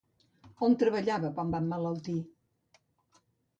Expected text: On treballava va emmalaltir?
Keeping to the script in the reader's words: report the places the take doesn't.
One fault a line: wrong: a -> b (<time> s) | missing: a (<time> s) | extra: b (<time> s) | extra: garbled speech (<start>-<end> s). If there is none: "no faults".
extra: quan (1.4 s)